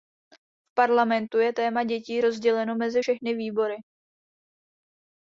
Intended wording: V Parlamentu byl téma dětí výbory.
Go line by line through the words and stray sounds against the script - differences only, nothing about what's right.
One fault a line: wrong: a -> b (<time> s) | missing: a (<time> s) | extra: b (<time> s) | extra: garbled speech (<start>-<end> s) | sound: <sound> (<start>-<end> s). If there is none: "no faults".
wrong: byl -> je (1.4 s)
extra: rozděleno mezi všechny (2.2 s)